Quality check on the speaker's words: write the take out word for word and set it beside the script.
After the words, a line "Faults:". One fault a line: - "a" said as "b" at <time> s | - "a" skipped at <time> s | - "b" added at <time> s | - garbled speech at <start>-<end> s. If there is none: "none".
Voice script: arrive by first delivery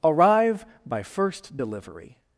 arrive by first delivery
Faults:
none